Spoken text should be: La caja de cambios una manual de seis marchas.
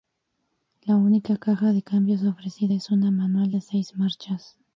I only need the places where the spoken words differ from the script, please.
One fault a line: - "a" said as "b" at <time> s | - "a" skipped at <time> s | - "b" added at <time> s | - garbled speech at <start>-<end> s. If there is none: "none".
- "única" added at 0.9 s
- "ofrecida es" added at 2.2 s